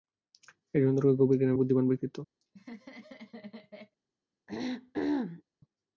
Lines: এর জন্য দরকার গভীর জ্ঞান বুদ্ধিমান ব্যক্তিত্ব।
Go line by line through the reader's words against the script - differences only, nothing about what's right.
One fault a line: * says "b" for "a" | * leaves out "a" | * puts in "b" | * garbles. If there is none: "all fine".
all fine